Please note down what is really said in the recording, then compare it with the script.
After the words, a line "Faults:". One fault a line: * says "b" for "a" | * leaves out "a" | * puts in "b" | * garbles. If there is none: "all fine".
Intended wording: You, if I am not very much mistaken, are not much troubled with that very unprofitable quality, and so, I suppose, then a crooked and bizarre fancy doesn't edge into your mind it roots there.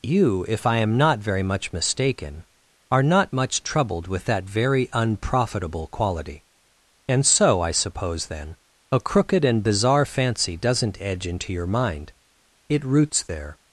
You, if I am not very much mistaken, are not much troubled with that very unprofitable quality, and so, I suppose, then a crooked and bizarre fancy doesn't edge into your mind it roots there.
Faults:
all fine